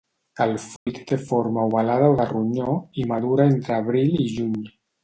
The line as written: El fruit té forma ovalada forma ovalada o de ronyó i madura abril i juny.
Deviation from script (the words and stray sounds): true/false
true